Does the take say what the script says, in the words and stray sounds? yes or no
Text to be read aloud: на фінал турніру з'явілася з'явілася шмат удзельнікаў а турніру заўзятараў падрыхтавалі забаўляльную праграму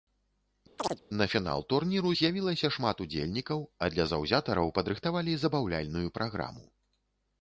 no